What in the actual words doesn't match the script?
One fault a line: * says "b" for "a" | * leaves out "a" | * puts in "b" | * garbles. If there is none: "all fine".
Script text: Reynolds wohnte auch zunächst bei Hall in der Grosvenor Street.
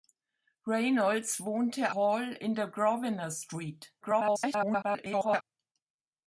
* leaves out "auch zunächst bei"
* garbles